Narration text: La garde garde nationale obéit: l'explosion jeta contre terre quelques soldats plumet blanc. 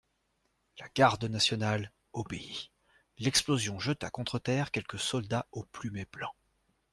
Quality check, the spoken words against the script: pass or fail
fail